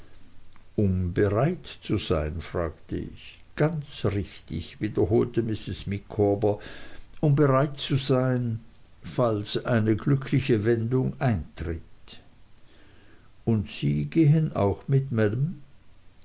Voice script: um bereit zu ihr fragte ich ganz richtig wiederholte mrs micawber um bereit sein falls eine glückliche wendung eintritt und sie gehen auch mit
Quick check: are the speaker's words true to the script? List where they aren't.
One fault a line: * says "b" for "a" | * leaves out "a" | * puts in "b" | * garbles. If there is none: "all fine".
* says "sein" for "ihr"
* puts in "zu"